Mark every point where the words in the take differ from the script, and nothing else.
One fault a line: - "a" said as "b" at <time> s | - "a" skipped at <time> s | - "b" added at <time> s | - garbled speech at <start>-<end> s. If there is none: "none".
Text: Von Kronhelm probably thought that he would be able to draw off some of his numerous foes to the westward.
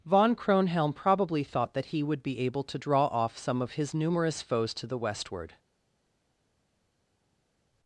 none